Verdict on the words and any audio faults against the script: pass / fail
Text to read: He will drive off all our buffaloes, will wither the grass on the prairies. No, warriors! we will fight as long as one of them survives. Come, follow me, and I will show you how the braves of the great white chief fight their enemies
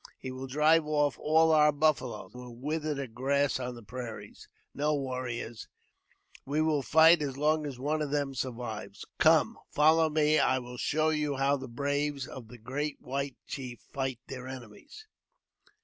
pass